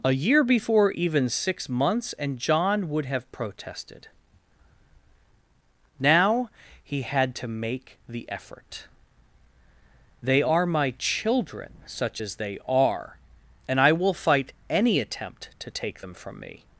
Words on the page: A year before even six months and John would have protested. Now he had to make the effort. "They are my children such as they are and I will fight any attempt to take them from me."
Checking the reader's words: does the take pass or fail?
pass